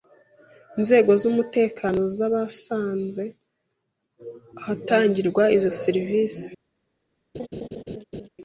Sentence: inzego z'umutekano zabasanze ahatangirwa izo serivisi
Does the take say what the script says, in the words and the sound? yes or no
no